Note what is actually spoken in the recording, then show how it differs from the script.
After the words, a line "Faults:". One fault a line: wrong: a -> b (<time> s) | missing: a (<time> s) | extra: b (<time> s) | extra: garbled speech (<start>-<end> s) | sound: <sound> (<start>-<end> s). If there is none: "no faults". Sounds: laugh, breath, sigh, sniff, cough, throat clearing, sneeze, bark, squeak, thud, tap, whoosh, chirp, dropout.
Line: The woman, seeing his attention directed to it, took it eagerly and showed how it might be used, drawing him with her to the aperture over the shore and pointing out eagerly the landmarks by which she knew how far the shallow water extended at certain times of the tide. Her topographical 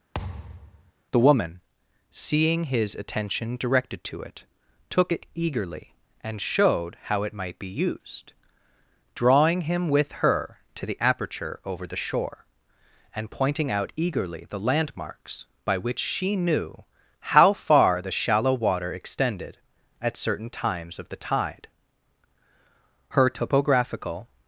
The woman, seeing his attention directed to it, took it eagerly and showed how it might be used, drawing him with her to the aperture over the shore and pointing out eagerly the landmarks by which she knew how far the shallow water extended at certain times of the tide. Her topographical
Faults:
sound: thud (0.1-0.9 s)